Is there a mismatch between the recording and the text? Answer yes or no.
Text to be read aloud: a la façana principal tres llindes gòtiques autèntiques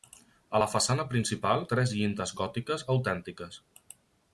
no